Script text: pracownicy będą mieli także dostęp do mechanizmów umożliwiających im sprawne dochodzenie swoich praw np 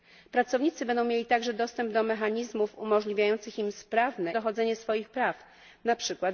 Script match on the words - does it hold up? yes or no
yes